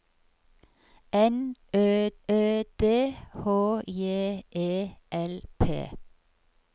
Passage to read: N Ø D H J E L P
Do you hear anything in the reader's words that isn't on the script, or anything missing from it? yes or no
yes